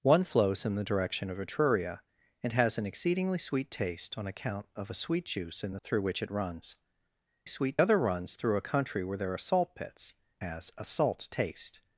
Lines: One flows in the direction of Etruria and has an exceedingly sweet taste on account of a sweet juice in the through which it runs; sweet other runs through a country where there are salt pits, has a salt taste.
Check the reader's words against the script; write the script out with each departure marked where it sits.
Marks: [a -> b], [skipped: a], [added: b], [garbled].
One flows in the direction of Etruria and has an exceedingly sweet taste on account of a sweet juice in the through which it runs; sweet other runs through a country where there are salt pits, has a salt taste.